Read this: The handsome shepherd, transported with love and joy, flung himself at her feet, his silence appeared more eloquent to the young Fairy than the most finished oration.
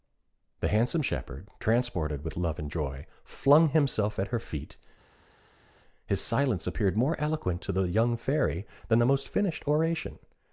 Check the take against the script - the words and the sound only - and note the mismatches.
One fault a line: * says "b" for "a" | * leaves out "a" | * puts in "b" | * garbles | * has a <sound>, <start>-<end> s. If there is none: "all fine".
all fine